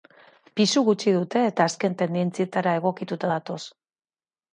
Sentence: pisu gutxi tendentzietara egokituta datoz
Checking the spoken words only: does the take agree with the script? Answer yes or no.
no